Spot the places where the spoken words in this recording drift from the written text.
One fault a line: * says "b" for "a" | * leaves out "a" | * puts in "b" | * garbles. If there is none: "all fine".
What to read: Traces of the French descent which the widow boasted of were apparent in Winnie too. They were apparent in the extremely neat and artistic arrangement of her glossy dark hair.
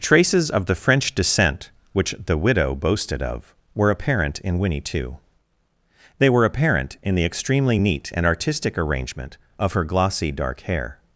all fine